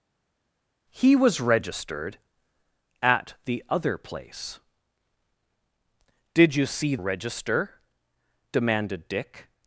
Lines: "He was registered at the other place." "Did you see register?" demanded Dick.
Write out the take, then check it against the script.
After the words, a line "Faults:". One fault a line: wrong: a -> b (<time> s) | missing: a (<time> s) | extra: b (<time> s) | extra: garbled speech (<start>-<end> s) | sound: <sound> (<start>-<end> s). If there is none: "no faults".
"He was registered at the other place." "Did you see register?" demanded Dick.
Faults:
no faults